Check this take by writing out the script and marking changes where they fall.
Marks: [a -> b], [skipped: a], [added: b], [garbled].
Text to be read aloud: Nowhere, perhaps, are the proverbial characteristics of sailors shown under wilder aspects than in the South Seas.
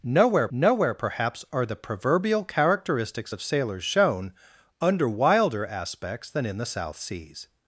Nowhere, [added: nowhere] perhaps, are the proverbial characteristics of sailors shown under wilder aspects than in the South Seas.